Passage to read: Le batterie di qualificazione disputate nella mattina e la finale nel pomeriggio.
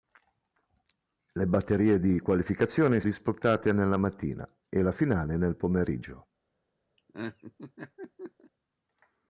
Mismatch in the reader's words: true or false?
false